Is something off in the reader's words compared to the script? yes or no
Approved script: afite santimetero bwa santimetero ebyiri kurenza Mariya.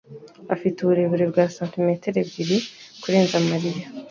yes